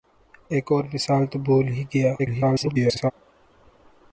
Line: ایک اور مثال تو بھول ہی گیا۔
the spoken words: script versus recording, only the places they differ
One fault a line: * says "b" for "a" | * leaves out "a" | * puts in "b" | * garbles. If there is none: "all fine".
* garbles